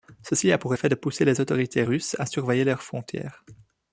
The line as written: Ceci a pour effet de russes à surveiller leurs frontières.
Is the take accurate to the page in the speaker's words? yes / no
no